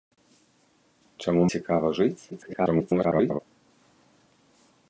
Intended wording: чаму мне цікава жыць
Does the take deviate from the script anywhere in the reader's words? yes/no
yes